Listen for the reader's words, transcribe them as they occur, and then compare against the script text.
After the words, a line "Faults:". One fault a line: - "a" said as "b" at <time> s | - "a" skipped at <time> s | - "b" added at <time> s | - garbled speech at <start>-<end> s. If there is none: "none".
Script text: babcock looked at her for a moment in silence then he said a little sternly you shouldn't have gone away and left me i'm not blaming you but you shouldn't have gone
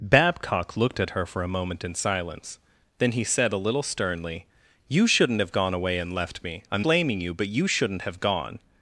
babcock looked at her for a moment in silence then he said a little sternly you shouldn't have gone away and left me i'm blaming you but you shouldn't have gone
Faults:
- "not" skipped at 6.9 s